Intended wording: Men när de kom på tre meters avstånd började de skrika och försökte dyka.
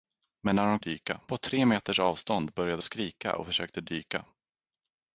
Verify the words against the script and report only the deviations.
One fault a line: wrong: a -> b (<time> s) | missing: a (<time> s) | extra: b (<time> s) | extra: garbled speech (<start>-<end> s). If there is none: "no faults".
wrong: kom -> dyka (0.8 s)
missing: de (2.8 s)